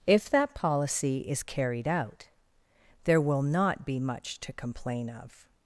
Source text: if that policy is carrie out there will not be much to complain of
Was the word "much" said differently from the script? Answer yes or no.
no